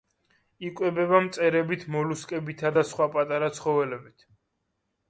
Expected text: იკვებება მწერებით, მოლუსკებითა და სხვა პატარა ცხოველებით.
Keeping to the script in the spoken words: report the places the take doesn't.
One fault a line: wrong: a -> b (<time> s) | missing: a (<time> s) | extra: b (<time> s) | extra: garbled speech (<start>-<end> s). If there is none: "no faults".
no faults